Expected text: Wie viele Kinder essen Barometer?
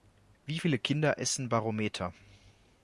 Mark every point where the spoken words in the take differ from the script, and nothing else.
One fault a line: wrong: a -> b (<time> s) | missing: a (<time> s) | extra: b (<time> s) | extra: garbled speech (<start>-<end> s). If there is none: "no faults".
no faults